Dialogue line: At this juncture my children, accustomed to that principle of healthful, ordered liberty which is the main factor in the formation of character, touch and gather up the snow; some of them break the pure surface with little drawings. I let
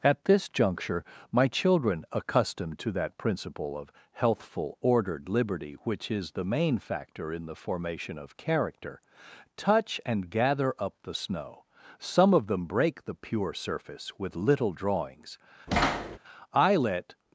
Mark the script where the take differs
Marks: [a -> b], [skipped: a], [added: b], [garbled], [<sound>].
At this juncture my children, accustomed to that principle of healthful, ordered liberty which is the main factor in the formation of character, touch and gather up the snow; some of them break the pure surface with little drawings. [thud] I let